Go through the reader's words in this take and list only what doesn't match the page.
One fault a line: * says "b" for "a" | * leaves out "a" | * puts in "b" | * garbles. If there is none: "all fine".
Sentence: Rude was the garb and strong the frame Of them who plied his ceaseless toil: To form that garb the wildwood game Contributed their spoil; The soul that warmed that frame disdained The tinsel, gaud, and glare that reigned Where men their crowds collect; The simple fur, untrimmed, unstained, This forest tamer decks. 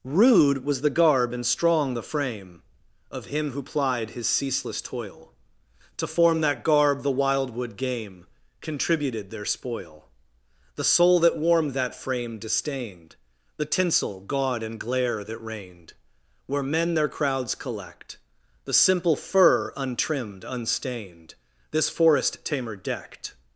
* says "him" for "them"
* says "decked" for "decks"